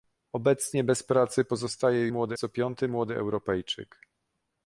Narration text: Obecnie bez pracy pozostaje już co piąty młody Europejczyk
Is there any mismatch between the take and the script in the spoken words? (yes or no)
yes